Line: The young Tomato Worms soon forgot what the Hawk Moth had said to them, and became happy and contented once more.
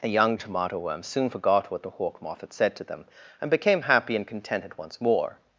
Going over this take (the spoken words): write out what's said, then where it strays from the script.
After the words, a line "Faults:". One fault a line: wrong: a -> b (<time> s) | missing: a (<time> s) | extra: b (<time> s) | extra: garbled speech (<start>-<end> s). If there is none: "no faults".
The young Tomato Worms soon forgot what the Hawk Moth had said to them, and became happy and contented once more.
Faults:
no faults